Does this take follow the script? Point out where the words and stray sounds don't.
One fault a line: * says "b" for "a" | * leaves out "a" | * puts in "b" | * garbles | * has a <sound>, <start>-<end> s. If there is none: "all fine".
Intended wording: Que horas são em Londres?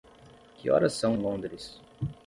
* leaves out "em"